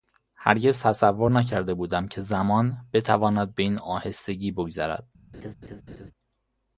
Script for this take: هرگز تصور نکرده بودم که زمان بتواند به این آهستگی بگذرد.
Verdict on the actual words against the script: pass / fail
pass